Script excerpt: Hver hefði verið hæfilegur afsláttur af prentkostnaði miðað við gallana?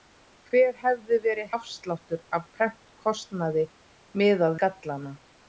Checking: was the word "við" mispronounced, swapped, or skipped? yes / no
yes